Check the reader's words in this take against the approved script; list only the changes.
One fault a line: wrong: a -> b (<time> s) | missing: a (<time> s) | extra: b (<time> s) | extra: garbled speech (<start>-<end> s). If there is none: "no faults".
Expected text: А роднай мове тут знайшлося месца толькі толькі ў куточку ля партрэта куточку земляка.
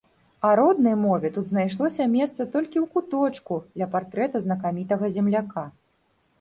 missing: толькі (2.8 s)
wrong: куточку -> знакамітага (4.5 s)